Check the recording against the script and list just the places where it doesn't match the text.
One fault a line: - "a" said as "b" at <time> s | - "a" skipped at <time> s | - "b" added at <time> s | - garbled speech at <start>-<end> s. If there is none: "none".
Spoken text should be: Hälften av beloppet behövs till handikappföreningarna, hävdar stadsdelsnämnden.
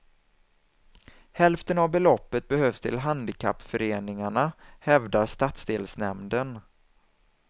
none